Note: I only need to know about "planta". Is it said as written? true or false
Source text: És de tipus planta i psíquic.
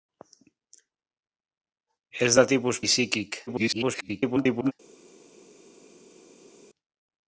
false